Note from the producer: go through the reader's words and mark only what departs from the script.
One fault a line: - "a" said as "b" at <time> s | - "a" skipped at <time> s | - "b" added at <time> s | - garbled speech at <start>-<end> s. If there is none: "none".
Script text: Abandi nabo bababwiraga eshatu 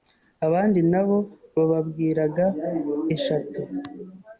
none